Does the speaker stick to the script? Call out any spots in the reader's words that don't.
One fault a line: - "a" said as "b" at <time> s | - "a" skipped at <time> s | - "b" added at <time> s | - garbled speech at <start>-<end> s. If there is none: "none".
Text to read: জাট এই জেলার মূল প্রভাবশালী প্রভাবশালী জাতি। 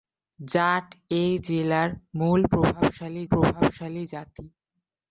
none